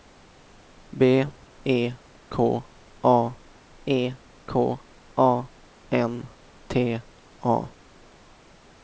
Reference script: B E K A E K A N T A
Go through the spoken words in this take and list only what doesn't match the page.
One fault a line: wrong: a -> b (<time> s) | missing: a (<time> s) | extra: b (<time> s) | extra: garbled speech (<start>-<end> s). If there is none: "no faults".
no faults